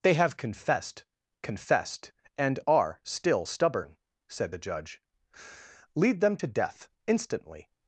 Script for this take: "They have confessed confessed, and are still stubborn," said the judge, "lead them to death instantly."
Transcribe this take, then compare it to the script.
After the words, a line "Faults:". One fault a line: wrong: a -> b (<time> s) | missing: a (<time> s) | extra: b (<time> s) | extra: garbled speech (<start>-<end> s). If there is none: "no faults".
"They have confessed confessed, and are still stubborn," said the judge, "lead them to death instantly."
Faults:
no faults